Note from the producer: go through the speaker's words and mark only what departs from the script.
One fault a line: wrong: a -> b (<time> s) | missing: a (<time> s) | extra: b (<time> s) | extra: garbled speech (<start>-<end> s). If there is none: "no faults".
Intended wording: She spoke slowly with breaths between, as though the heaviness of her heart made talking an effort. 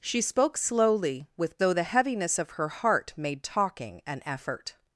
missing: breaths between as (1.6 s)